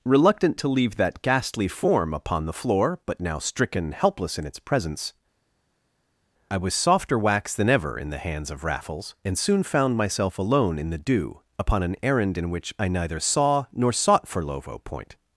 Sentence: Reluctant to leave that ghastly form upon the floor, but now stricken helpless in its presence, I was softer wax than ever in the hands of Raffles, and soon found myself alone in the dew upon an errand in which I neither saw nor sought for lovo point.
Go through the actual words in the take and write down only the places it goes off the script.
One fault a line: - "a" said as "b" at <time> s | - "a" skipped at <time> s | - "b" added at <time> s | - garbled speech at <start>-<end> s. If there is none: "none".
none